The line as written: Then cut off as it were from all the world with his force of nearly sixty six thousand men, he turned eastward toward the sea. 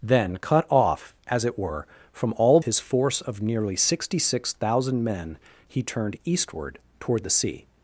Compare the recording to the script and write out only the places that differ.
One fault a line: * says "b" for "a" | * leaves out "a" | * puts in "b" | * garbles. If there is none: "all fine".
* leaves out "the world with"